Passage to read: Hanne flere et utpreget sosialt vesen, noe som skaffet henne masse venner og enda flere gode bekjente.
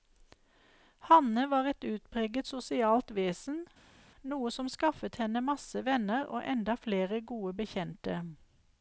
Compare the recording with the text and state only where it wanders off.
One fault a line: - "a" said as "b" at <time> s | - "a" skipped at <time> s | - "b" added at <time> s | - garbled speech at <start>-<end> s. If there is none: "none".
- "flere" said as "var" at 1.5 s